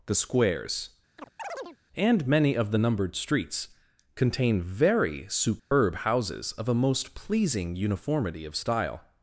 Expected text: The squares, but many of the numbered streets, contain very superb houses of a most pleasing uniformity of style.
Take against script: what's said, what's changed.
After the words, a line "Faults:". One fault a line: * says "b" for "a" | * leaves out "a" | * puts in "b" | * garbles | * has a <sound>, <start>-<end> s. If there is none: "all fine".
The squares, and many of the numbered streets, contain very superb houses of a most pleasing uniformity of style.
Faults:
* has a chirp, 1.2-1.8 s
* says "and" for "but"
* has a dropout, 5.6-5.7 s